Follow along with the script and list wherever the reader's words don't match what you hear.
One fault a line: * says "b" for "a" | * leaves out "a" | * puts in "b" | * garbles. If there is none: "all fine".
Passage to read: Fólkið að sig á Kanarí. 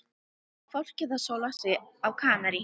* puts in "sóla"